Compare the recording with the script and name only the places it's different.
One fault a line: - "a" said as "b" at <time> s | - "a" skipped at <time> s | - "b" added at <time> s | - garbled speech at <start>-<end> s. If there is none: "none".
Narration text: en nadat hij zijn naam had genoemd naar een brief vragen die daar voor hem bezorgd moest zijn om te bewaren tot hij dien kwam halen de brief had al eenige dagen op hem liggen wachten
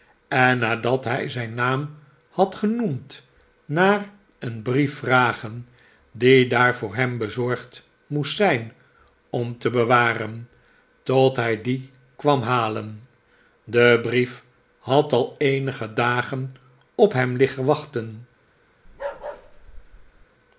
none